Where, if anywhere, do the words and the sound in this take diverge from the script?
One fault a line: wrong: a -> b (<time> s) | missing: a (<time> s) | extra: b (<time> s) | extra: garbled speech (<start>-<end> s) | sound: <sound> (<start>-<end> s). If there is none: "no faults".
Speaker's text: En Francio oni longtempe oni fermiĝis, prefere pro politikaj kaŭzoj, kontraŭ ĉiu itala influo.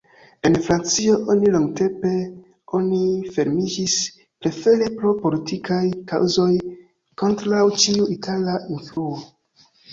sound: dropout (8.9-9.0 s)